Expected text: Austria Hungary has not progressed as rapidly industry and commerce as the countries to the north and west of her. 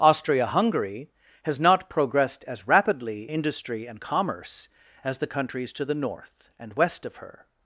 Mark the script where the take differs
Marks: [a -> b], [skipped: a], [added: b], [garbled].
Austria Hungary has not progressed as rapidly industry and commerce as the countries to the north and west of her.